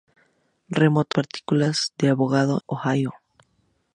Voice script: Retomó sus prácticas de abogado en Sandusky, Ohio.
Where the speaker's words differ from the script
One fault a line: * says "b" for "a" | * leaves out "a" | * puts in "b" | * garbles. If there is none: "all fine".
* leaves out "sus"
* leaves out "en Sandusky"